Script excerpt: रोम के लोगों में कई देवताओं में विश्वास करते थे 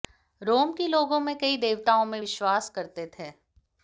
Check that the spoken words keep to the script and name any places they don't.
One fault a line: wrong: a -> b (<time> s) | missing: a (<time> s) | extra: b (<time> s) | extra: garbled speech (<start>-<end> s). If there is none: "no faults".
no faults